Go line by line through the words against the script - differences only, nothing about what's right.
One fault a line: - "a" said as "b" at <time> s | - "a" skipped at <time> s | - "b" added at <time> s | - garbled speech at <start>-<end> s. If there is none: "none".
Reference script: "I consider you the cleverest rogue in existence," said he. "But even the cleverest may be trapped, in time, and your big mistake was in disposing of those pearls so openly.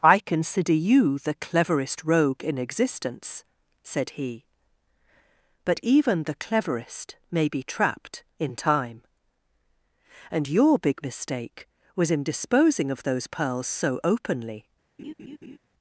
none